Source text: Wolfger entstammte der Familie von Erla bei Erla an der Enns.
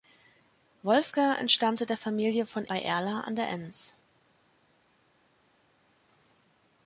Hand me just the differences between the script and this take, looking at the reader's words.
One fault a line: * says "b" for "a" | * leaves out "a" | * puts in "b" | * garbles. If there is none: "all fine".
* leaves out "Erla"